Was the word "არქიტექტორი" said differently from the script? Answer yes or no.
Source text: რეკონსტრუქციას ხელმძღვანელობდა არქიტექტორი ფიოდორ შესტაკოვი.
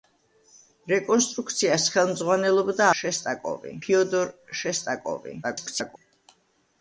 yes